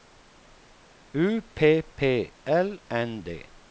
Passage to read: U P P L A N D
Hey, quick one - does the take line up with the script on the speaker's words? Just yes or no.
no